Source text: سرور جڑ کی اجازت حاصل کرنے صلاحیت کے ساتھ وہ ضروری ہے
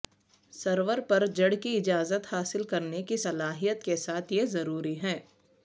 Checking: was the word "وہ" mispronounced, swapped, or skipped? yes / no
yes